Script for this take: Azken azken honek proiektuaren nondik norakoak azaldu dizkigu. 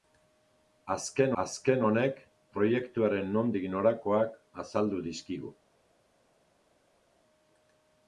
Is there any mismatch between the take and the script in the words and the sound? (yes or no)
no